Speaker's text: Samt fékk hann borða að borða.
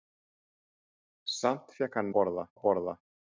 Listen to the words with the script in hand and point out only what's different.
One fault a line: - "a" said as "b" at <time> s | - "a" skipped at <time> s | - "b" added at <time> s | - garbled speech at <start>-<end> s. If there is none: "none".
none